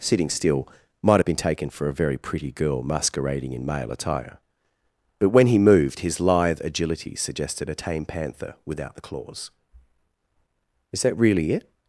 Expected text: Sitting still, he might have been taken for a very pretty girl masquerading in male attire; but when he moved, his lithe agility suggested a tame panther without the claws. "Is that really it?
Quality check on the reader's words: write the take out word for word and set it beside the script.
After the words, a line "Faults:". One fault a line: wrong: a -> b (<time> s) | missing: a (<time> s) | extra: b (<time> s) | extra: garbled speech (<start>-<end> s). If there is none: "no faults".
Sitting still, might have been taken for a very pretty girl masquerading in male attire; but when he moved, his lithe agility suggested a tame panther without the claws. "Is that really it?
Faults:
missing: he (0.7 s)